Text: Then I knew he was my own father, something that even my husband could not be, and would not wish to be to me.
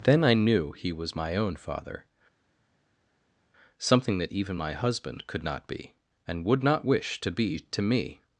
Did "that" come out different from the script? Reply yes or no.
no